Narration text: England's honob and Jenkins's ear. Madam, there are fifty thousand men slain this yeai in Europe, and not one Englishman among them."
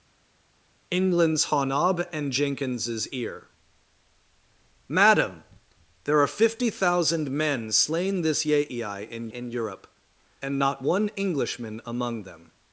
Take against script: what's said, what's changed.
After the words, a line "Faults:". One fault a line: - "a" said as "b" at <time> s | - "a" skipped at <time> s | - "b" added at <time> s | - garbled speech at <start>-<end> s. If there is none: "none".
England's honob and Jenkins's ear. Madam, there are fifty thousand men slain this yeai in in Europe, and not one Englishman among them."
Faults:
- "in" added at 9.3 s